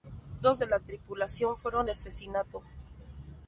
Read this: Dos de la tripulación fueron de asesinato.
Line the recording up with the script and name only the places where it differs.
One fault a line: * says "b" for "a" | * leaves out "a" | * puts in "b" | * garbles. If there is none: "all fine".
all fine